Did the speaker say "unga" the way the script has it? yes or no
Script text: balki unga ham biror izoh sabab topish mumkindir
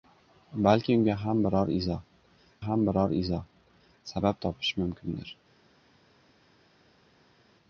yes